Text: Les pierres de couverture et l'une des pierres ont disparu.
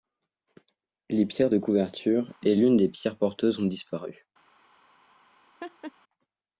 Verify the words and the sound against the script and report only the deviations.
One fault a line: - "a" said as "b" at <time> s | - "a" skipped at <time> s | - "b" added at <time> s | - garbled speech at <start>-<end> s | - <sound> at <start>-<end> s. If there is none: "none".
- "porteuses" added at 3.2 s
- laugh at 5.6-5.9 s